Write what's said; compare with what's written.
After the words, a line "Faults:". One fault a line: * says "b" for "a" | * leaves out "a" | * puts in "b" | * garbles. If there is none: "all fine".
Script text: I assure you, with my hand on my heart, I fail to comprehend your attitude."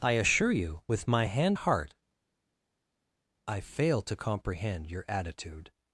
I assure you, with my hand heart, I fail to comprehend your attitude."
Faults:
* leaves out "on my"